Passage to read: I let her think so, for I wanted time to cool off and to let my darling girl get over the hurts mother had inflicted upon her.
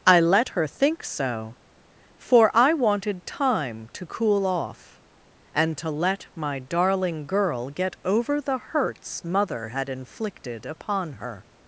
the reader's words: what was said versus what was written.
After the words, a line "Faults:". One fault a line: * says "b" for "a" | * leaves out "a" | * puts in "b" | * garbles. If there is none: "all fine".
I let her think so, for I wanted time to cool off and to let my darling girl get over the hurts mother had inflicted upon her.
Faults:
all fine